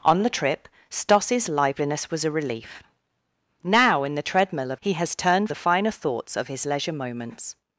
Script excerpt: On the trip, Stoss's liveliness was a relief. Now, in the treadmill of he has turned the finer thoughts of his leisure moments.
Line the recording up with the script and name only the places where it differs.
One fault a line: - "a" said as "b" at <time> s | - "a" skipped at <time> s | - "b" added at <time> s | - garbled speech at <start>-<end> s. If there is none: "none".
none